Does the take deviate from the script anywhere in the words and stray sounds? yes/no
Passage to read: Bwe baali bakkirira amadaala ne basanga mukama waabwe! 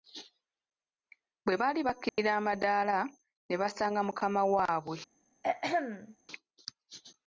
yes